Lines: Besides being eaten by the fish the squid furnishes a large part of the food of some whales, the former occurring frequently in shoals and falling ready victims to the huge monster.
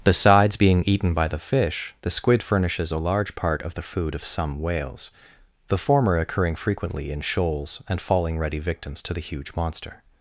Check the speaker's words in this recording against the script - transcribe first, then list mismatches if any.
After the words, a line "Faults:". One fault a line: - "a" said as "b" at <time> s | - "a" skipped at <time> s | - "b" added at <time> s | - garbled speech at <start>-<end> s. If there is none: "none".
Besides being eaten by the fish the squid furnishes a large part of the food of some whales, the former occurring frequently in shoals and falling ready victims to the huge monster.
Faults:
none